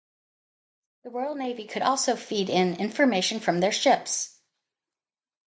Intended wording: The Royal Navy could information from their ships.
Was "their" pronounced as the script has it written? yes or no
yes